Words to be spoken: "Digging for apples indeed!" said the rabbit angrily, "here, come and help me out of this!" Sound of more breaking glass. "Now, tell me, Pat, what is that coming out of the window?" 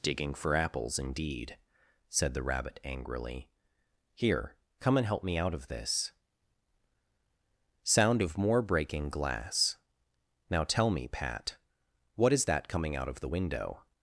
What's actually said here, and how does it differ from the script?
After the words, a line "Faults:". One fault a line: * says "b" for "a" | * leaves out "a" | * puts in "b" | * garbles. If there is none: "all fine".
"Digging for apples indeed!" said the rabbit angrily, "here, come and help me out of this!" Sound of more breaking glass. "Now, tell me, Pat, what is that coming out of the window?"
Faults:
all fine